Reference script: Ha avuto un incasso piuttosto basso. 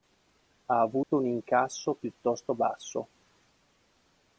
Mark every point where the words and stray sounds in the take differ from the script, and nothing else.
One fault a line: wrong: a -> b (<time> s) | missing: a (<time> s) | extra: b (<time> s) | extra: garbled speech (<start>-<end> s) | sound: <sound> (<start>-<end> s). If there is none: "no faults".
sound: dropout (1.0-1.1 s)